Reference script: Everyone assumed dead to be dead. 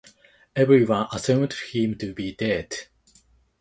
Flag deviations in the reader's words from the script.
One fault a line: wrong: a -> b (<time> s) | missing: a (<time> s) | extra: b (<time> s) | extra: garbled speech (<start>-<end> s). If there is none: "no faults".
wrong: dead -> him (1.7 s)